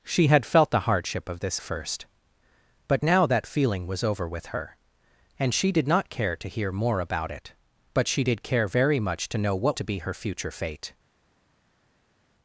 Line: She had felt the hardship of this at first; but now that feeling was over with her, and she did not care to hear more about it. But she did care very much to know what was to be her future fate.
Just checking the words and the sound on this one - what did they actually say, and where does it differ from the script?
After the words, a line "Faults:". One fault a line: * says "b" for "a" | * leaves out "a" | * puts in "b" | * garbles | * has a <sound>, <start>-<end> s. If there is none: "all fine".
She had felt the hardship of this first; but now that feeling was over with her, and she did not care to hear more about it. But she did care very much to know what to be her future fate.
Faults:
* leaves out "at"
* leaves out "was"